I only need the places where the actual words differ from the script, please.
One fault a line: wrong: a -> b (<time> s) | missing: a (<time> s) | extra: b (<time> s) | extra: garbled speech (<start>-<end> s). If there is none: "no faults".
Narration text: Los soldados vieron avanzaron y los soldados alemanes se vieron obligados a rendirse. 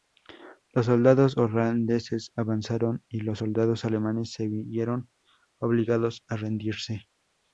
wrong: vieron -> holandeses (1.4 s)